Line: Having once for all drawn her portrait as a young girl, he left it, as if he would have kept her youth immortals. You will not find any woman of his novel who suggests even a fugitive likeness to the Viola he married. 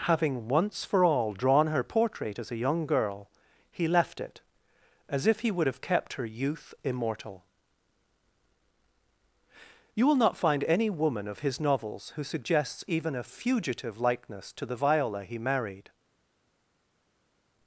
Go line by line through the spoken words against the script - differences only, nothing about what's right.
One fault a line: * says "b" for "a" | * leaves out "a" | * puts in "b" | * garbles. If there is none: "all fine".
* says "immortal" for "immortals"
* says "novels" for "novel"